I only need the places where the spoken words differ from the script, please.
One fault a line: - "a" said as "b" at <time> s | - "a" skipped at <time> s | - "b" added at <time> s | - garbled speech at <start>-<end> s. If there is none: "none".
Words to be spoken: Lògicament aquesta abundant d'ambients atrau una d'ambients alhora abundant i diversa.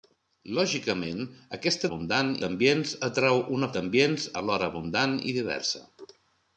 none